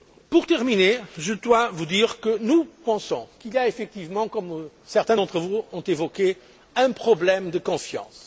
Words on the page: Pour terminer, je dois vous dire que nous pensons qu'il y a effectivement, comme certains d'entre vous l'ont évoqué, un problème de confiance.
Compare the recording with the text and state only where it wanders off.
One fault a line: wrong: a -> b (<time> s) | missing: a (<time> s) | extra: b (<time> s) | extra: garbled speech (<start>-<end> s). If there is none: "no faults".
no faults